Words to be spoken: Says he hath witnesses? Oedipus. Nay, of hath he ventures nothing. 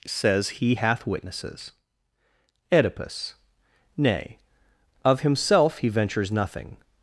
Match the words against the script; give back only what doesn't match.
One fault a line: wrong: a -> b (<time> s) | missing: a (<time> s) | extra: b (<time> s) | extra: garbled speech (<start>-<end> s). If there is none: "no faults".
wrong: hath -> himself (5.2 s)